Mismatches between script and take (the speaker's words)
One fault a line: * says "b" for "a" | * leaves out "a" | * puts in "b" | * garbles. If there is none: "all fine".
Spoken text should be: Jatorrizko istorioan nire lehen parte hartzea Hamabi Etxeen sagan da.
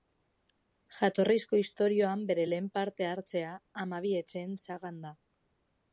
* says "bere" for "nire"